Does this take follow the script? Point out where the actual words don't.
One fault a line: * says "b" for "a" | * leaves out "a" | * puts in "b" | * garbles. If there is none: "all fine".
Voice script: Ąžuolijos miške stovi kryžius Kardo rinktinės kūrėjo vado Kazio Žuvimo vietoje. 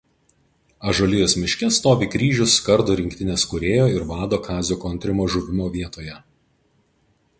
* puts in "ir"
* puts in "Kontrimo"